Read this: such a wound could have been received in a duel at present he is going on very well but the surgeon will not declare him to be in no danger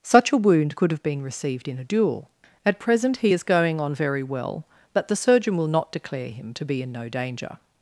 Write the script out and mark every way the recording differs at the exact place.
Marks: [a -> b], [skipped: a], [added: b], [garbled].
such a wound could have been received in a duel at present he is going on very well but the surgeon will not declare him to be in no danger